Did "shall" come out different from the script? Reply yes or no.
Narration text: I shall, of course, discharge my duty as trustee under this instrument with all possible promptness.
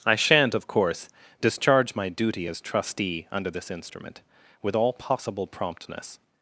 yes